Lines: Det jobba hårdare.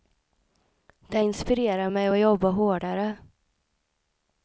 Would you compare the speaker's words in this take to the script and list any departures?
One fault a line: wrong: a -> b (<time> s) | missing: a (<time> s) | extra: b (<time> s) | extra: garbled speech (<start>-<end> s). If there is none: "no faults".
extra: inspirerar mig att (1.2 s)